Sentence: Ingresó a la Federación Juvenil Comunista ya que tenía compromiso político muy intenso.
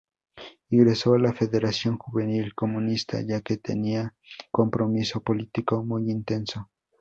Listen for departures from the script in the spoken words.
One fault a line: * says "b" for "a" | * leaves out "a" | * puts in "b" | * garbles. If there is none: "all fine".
all fine